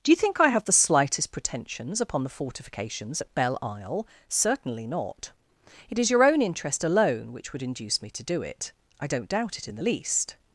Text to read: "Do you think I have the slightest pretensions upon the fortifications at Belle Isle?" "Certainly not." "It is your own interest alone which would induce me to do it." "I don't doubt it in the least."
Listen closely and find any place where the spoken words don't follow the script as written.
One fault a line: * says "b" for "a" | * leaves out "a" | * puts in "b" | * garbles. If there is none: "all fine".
all fine